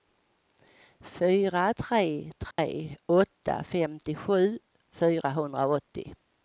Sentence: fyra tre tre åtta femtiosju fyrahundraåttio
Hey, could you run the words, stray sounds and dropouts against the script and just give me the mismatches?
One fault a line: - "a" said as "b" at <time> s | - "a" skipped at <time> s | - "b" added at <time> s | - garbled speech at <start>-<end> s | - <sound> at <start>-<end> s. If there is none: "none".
- dropout at 2.5-2.6 s